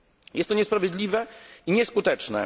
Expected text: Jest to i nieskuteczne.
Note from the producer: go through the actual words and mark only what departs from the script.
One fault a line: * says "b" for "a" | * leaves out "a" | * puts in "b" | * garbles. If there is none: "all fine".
* puts in "niesprawiedliwe"